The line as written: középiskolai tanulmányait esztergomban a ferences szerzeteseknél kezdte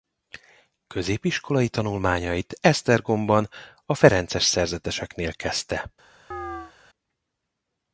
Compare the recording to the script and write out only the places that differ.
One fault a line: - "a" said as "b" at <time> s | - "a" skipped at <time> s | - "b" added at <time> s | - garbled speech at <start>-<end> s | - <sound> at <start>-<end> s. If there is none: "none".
- chirp at 6.3-6.7 s